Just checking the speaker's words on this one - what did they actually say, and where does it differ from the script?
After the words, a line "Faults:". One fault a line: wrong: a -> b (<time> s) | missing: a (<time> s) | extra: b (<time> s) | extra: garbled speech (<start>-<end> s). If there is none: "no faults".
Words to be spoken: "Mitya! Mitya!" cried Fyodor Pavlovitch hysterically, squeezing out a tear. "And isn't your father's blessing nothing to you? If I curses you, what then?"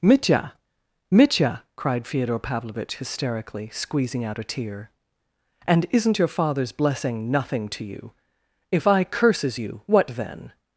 "Mitya! Mitya!" cried Fyodor Pavlovitch hysterically, squeezing out a tear. "And isn't your father's blessing nothing to you? If I curses you, what then?"
Faults:
no faults